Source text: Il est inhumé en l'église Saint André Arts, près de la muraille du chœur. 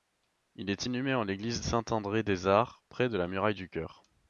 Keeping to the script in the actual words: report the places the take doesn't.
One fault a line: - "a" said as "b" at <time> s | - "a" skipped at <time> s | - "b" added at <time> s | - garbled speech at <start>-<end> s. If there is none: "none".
- "des" added at 2.2 s